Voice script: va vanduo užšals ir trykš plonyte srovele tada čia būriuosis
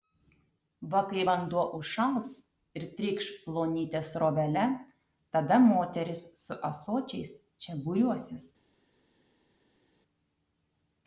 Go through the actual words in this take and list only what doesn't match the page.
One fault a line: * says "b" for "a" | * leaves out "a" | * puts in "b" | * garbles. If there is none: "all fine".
* puts in "kai"
* puts in "moterys su ąsočiais"